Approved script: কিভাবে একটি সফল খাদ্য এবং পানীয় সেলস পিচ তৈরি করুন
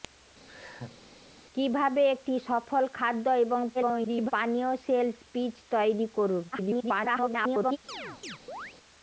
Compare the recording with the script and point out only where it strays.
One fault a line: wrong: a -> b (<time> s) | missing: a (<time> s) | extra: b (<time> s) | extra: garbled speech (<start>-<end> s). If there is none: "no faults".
extra: garbled speech (3.7-4.3 s)
extra: garbled speech (6.5-7.8 s)